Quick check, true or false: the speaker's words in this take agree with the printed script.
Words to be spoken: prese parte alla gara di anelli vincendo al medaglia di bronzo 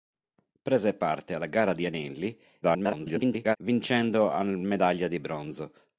false